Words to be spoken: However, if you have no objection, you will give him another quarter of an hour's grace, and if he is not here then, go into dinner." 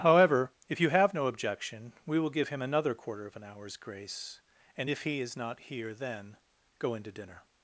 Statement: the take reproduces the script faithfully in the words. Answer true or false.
false